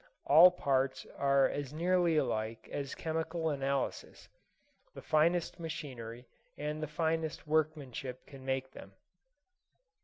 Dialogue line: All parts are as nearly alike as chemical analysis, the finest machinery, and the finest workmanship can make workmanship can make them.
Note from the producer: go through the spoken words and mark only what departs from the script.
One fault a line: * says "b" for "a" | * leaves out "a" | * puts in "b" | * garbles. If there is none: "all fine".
* leaves out "workmanship can make"